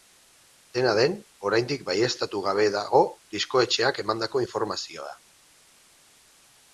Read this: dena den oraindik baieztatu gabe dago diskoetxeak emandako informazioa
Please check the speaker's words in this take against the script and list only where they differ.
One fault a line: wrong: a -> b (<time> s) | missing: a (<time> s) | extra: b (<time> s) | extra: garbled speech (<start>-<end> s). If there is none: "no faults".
no faults